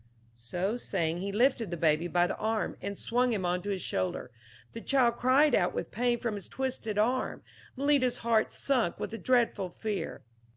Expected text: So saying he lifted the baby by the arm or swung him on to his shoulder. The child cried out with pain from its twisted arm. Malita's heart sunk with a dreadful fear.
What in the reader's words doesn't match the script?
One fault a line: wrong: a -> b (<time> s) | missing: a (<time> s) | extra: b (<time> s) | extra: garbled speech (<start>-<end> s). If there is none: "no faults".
wrong: or -> and (2.8 s)